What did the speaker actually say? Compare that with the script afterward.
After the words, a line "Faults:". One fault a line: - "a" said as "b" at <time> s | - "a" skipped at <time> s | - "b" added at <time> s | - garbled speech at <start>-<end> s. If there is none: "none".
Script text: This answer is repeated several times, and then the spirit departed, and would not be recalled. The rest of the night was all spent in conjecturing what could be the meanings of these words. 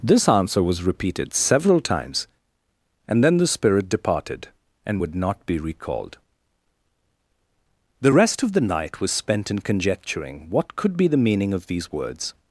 This answer was repeated several times, and then the spirit departed, and would not be recalled. The rest of the night was spent in conjecturing what could be the meaning of these words.
Faults:
- "is" said as "was" at 0.6 s
- "all" skipped at 9.1 s
- "meanings" said as "meaning" at 11.2 s